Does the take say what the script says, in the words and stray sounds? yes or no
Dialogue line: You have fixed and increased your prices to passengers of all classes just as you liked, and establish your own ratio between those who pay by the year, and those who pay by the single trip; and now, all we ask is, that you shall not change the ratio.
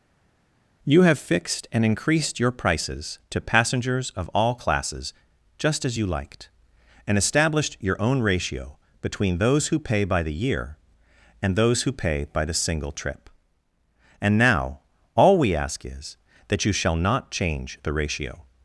no